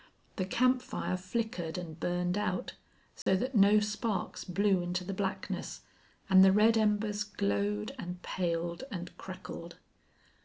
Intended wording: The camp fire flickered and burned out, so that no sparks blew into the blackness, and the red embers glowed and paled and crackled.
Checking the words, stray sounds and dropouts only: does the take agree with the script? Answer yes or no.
no